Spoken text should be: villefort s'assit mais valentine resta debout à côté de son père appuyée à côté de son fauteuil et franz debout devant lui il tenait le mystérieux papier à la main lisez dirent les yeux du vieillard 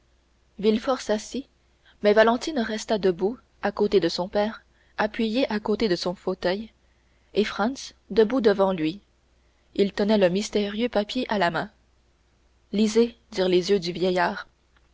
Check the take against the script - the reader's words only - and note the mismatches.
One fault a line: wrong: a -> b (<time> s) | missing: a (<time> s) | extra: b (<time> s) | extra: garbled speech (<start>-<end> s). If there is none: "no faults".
no faults